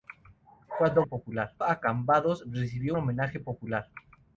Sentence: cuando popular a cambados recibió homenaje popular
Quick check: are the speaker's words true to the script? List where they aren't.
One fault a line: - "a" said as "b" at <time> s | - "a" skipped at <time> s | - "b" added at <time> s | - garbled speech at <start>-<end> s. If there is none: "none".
none